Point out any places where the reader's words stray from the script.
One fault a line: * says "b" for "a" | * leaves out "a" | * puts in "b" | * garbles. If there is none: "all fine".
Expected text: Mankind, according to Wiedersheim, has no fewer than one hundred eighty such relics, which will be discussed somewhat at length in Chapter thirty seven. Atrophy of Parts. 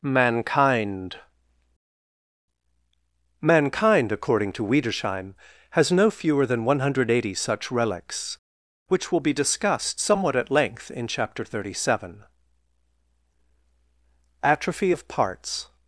* puts in "mankind"